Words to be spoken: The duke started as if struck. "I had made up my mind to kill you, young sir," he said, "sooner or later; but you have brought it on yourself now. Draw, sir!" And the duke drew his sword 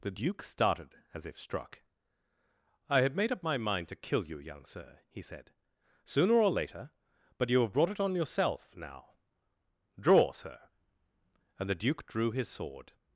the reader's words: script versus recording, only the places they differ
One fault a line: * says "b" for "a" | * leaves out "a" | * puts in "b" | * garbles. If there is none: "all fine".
all fine